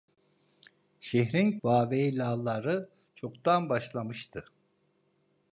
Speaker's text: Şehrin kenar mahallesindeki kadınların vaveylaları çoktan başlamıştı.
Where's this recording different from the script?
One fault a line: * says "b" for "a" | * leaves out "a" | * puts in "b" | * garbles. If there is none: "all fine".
* leaves out "kenar mahallesindeki kadınların"